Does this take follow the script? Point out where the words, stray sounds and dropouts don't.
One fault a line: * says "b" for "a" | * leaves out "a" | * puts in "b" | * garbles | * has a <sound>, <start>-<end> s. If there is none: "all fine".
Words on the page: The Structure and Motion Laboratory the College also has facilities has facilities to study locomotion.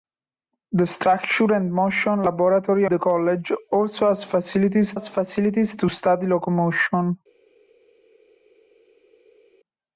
all fine